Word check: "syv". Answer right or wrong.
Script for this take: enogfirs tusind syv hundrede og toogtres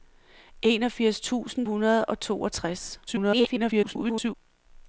wrong